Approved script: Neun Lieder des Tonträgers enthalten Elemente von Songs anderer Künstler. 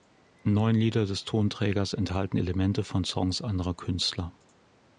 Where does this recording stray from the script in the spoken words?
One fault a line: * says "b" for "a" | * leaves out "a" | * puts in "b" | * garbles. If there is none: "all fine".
all fine